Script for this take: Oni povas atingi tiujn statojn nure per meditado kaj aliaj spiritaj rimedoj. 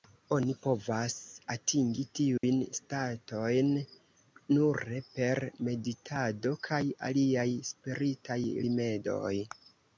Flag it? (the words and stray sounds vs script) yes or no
yes